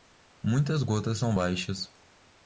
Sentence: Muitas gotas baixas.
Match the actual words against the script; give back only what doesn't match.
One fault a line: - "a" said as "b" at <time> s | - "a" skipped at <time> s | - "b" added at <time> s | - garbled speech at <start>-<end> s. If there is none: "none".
- "são" added at 1.2 s